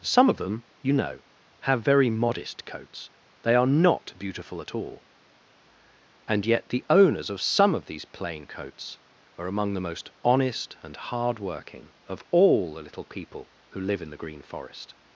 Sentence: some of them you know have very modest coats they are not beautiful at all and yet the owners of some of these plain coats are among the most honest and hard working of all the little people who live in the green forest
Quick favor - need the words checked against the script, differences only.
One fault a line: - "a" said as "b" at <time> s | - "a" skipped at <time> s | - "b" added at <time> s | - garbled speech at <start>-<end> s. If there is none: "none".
none